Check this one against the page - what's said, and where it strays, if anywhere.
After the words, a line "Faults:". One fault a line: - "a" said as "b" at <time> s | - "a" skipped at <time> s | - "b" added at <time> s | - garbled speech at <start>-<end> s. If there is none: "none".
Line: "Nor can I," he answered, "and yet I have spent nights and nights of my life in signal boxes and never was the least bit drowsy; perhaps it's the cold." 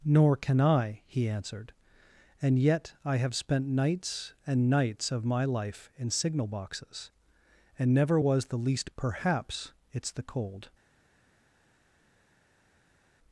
"Nor can I," he answered, "and yet I have spent nights and nights of my life in signal boxes and never was the least; perhaps it's the cold."
Faults:
- "bit drowsy" skipped at 8.9 s